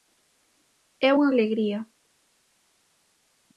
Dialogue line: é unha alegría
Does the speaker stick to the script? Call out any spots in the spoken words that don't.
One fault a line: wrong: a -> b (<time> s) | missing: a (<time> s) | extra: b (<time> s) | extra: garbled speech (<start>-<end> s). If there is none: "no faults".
no faults